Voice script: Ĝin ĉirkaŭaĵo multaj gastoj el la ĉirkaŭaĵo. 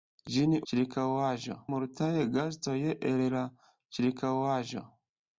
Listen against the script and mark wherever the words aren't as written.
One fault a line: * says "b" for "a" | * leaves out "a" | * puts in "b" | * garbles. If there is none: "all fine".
all fine